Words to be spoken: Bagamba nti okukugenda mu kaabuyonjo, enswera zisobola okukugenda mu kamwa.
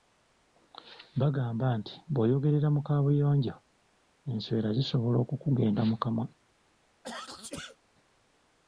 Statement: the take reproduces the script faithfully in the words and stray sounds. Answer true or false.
false